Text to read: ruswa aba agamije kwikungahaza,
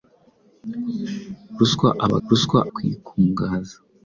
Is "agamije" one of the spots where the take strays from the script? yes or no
yes